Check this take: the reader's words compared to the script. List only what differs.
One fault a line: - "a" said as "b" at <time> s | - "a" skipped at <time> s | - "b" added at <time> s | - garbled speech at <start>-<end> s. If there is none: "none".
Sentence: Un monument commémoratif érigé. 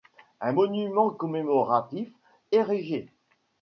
none